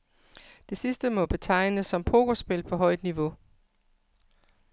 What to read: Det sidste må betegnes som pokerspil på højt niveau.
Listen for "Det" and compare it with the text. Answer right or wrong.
right